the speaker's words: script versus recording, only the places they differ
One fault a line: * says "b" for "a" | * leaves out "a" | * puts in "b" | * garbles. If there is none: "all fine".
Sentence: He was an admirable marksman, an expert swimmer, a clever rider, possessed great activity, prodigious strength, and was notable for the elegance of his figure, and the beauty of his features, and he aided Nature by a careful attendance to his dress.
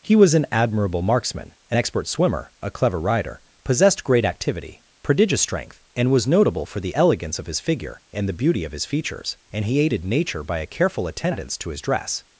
all fine